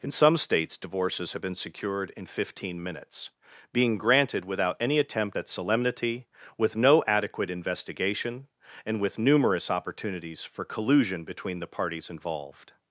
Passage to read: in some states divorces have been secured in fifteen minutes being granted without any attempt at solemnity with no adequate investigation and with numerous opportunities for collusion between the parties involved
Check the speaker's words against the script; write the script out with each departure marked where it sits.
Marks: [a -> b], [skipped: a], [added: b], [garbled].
in some states divorces have been secured in fifteen minutes being granted without any attempt at solemnity with no adequate investigation and with numerous opportunities for collusion between the parties involved